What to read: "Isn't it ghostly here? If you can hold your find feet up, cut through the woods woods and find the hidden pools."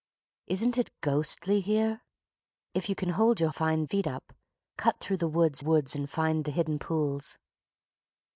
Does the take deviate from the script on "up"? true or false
false